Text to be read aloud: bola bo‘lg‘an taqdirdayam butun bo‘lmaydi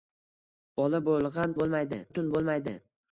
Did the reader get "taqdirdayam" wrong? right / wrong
wrong